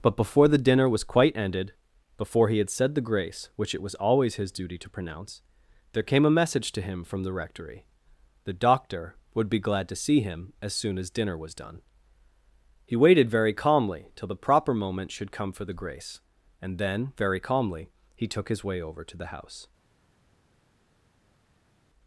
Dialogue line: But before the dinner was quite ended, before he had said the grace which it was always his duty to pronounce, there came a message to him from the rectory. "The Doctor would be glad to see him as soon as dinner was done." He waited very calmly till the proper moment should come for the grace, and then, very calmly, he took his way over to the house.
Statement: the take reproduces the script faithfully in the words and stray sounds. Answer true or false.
true